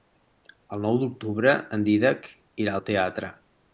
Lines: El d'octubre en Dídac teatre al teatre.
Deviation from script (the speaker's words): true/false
true